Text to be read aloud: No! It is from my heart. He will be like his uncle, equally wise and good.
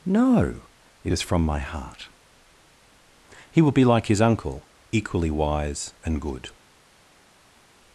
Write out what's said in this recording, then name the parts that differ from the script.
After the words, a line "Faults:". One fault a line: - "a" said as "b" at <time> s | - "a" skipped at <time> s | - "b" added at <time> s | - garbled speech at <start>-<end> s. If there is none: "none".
No! It is from my heart. He will be like his uncle, equally wise and good.
Faults:
none